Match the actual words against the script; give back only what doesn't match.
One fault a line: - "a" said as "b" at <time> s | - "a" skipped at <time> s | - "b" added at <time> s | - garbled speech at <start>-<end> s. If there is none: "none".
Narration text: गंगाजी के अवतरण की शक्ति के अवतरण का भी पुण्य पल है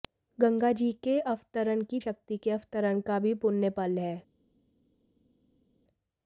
none